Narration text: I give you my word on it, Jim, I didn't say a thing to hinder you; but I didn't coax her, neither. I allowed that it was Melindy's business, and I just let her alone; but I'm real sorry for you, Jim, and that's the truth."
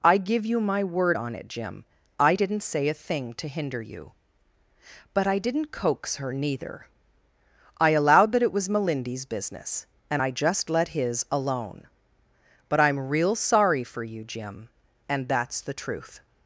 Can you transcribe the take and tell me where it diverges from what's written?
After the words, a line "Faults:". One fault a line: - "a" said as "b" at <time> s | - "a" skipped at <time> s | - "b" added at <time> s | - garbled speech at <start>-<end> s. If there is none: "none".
I give you my word on it, Jim, I didn't say a thing to hinder you; but I didn't coax her, neither. I allowed that it was Melindy's business, and I just let his alone; but I'm real sorry for you, Jim, and that's the truth."
Faults:
- "her" said as "his" at 10.9 s